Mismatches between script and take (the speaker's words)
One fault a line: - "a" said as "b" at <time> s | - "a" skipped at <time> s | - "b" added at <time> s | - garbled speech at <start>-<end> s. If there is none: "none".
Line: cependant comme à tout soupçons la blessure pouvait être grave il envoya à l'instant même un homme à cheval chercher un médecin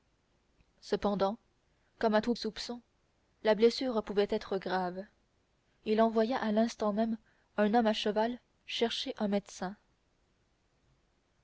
none